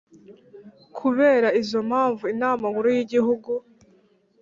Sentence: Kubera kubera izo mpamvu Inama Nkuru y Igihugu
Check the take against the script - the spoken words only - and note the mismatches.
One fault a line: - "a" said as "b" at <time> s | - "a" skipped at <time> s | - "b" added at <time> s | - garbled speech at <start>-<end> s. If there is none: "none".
- "kubera" skipped at 1.5 s